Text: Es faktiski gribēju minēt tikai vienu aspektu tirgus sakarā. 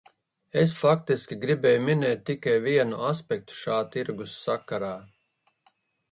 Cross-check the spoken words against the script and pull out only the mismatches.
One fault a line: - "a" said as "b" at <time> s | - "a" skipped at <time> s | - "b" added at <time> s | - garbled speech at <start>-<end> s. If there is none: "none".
- "šā" added at 3.6 s